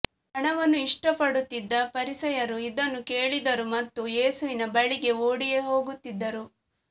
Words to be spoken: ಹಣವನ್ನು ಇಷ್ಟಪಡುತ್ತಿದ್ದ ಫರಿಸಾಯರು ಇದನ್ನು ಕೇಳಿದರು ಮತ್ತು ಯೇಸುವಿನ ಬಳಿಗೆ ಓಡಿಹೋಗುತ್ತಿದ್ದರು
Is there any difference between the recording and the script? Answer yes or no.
no